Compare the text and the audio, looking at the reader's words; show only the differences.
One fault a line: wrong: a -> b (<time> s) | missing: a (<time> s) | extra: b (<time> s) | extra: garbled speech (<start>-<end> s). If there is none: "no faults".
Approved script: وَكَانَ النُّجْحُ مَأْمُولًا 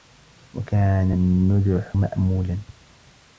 no faults